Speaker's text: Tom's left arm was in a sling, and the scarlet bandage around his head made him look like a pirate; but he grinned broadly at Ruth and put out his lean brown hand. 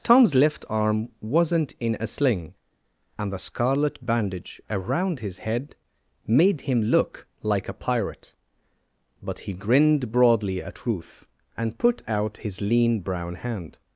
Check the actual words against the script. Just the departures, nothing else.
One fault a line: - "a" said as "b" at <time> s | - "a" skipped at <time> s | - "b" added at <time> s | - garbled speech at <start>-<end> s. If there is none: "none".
- "was" said as "wasn't" at 1.2 s